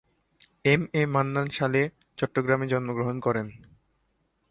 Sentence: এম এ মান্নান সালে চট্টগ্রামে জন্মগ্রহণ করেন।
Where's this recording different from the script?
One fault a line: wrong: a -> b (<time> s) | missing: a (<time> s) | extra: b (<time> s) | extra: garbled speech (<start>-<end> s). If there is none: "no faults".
no faults